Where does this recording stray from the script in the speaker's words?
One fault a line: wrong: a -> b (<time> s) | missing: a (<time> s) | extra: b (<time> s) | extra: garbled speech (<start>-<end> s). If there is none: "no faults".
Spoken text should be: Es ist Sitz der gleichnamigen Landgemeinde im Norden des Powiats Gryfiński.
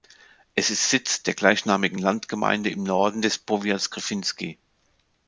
no faults